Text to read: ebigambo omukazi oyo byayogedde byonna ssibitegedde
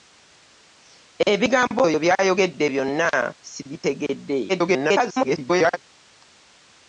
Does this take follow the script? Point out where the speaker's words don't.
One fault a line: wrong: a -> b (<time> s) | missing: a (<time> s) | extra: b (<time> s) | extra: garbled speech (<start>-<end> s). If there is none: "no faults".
missing: omukazi (1.8 s)
extra: garbled speech (4.5-5.8 s)